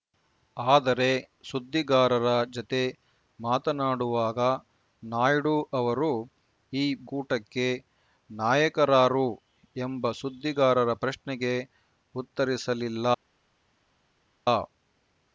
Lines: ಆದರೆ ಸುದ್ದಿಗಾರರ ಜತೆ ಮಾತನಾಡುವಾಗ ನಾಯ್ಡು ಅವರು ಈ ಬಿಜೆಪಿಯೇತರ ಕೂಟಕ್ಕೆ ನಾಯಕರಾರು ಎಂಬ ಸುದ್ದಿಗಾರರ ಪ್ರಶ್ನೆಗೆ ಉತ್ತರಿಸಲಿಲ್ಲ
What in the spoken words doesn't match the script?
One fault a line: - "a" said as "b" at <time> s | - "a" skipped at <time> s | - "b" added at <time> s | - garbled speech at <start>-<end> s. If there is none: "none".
- "ಬಿಜೆಪಿಯೇತರ" skipped at 6.8 s